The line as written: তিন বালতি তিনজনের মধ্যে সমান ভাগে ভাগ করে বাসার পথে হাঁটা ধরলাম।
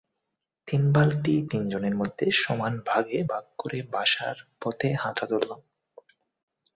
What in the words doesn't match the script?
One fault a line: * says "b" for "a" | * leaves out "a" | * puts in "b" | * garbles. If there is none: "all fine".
all fine